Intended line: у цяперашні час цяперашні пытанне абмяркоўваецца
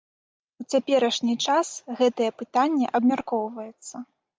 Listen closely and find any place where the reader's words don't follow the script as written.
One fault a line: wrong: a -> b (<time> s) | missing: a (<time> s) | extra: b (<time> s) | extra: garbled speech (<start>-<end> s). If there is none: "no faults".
wrong: цяперашні -> гэтае (2.0 s)